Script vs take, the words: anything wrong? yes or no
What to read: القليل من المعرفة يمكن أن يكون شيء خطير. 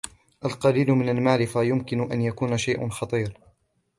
no